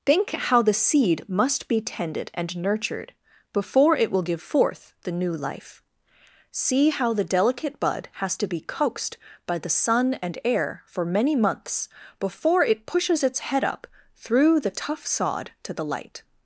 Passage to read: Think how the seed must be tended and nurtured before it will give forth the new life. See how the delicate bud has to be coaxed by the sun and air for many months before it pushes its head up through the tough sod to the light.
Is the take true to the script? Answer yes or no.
yes